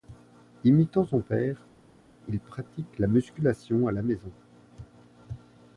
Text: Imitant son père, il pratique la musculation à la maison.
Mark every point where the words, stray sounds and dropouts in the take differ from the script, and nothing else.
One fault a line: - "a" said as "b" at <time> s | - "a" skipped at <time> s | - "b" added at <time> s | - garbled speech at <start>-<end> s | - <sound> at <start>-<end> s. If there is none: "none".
none